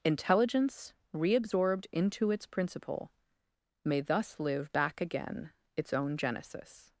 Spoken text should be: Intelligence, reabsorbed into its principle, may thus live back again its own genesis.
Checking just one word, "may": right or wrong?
right